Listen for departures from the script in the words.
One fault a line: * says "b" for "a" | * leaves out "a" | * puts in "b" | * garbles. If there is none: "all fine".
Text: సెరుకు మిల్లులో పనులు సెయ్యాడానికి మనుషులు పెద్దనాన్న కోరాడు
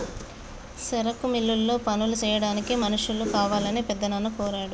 * puts in "కావాలని"